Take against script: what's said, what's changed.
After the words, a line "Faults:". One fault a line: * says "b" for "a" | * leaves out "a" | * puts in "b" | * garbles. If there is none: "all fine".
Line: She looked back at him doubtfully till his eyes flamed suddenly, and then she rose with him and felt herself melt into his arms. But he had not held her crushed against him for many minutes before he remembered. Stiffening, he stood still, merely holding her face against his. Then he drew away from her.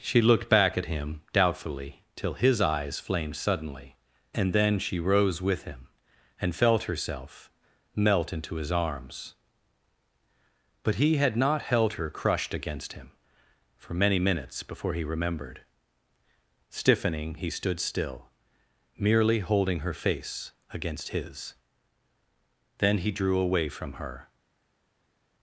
She looked back at him doubtfully till his eyes flamed suddenly, and then she rose with him and felt herself melt into his arms. But he had not held her crushed against him for many minutes before he remembered. Stiffening, he stood still, merely holding her face against his. Then he drew away from her.
Faults:
all fine